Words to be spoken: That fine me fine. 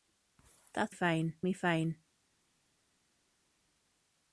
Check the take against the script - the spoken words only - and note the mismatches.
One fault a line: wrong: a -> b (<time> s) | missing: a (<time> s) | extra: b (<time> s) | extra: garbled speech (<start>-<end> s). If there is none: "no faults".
no faults